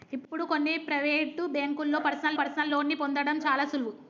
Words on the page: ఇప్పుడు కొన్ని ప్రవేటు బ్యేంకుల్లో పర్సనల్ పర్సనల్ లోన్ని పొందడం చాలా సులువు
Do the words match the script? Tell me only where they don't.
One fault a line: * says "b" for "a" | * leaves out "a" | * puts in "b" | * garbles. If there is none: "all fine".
all fine